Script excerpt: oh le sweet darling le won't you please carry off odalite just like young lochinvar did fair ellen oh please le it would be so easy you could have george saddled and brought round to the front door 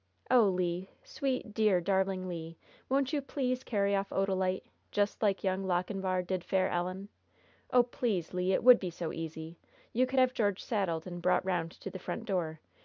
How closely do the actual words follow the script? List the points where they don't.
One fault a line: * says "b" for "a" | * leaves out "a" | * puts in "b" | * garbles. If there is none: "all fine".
* puts in "dear"